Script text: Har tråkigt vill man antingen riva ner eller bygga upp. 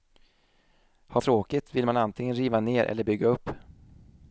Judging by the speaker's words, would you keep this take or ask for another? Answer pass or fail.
pass